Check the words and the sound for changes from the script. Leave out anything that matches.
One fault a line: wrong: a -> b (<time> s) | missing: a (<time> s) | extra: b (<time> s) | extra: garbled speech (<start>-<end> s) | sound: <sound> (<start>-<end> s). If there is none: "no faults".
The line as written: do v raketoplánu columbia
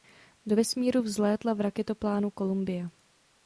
extra: vesmíru vzlétla (0.5 s)